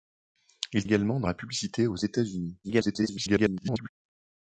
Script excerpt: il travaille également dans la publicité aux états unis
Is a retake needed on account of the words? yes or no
yes